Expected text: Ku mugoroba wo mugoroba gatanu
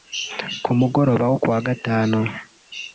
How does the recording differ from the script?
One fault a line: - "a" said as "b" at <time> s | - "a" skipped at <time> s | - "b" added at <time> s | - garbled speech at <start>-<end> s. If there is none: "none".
- "mugoroba" said as "kuwa" at 1.4 s